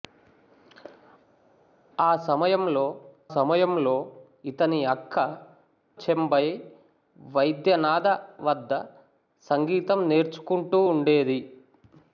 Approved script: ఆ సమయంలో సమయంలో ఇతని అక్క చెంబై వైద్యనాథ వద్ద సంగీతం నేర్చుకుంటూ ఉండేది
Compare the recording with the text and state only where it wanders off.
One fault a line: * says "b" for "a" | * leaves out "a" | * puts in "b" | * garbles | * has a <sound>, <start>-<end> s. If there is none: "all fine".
all fine